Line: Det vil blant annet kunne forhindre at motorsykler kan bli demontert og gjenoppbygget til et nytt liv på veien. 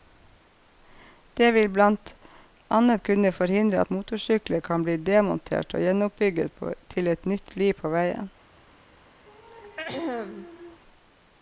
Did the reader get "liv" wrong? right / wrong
right